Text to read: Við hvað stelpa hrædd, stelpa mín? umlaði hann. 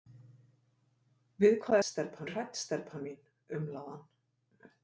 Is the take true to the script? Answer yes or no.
yes